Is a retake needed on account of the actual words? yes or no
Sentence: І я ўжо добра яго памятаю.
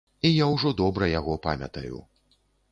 no